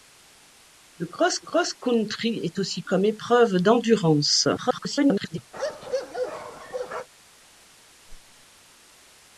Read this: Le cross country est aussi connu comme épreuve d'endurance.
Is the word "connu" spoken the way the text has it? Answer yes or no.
no